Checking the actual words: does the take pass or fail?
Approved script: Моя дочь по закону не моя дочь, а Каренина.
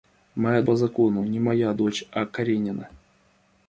fail